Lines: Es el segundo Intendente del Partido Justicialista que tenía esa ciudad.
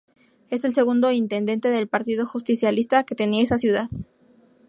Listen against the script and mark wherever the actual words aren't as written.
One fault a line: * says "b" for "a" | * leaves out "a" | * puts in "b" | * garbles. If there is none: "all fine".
all fine